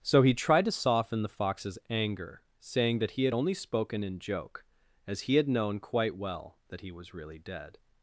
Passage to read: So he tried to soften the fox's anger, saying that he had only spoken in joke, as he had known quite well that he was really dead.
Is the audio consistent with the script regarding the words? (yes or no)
yes